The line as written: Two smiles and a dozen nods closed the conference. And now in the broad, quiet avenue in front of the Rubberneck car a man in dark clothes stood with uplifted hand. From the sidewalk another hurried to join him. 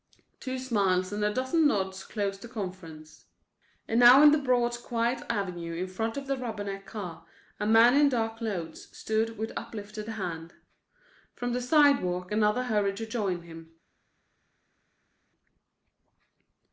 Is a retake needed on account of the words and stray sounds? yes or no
no